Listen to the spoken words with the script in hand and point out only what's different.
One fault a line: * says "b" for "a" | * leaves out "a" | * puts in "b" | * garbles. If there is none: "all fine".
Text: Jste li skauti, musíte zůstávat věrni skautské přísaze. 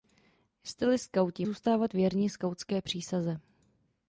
* leaves out "musíte"